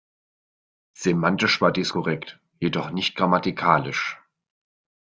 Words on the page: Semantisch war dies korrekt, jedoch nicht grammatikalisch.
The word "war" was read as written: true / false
true